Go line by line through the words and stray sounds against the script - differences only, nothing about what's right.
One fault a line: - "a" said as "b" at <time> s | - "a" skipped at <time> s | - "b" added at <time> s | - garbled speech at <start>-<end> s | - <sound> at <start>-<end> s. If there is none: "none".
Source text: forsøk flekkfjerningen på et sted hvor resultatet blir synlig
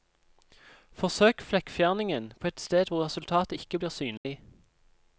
- "ikke" added at 3.5 s
- dropout at 4.2-4.3 s